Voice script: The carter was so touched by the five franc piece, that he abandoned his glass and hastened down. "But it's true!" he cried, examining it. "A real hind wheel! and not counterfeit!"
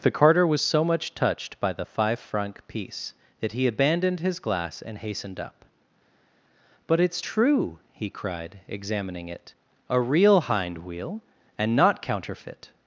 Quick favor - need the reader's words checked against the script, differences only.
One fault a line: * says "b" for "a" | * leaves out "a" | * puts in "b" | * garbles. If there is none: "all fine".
* puts in "much"
* says "up" for "down"